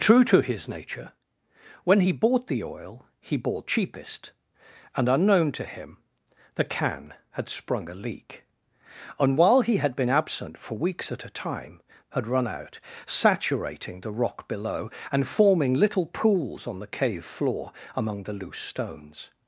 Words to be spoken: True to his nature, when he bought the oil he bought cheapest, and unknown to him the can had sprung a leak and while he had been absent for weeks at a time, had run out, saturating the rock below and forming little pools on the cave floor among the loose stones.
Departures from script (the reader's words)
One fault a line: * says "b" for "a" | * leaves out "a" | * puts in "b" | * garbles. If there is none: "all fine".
all fine